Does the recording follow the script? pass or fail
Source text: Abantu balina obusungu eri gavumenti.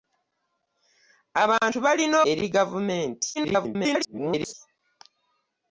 fail